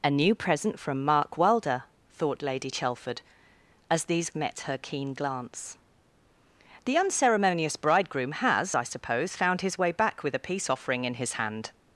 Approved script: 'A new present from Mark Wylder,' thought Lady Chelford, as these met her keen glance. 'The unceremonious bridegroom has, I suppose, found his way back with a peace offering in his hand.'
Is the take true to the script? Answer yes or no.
yes